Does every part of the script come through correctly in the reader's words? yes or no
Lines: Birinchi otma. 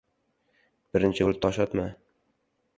no